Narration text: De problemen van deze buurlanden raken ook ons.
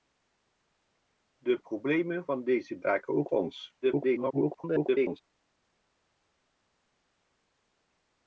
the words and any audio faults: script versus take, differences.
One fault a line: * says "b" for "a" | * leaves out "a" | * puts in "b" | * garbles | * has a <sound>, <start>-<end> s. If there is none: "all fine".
* leaves out "buurlanden"
* garbles